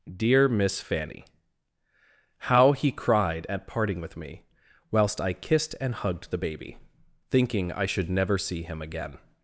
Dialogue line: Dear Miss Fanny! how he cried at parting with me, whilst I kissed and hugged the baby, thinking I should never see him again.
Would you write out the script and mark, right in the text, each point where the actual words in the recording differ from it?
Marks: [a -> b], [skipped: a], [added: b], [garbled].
Dear Miss Fanny! how he cried at parting with me, whilst I kissed and hugged the baby, thinking I should never see him again.